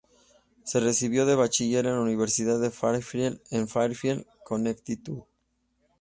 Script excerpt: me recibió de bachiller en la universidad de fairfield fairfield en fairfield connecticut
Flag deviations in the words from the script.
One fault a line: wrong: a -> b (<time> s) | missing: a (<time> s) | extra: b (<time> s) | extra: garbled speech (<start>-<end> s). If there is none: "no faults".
wrong: me -> se (0.6 s)
missing: fairfield (3.4 s)